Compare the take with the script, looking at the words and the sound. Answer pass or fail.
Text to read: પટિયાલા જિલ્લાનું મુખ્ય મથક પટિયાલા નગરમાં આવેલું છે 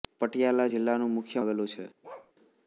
fail